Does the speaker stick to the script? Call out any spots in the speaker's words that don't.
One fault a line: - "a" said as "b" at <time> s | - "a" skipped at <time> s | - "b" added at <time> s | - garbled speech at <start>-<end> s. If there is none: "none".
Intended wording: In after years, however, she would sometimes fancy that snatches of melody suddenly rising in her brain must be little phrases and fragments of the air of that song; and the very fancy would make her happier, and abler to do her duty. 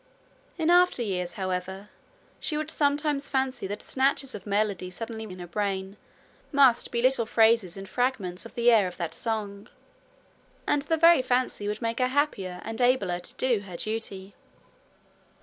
- "rising" skipped at 5.3 s